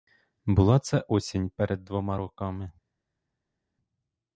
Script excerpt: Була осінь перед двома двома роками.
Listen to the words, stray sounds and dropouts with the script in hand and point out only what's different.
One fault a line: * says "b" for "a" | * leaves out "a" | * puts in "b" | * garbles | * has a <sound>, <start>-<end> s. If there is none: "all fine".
* puts in "це"
* leaves out "двома"